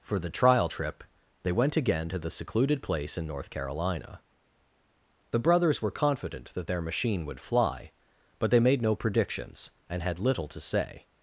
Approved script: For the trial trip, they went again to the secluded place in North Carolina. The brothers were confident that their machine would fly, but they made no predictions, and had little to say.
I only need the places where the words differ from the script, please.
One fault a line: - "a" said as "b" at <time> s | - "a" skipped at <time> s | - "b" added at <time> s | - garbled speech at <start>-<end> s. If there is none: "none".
none